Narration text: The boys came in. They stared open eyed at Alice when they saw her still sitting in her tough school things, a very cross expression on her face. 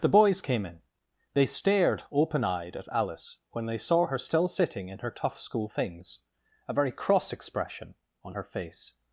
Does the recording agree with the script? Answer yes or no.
yes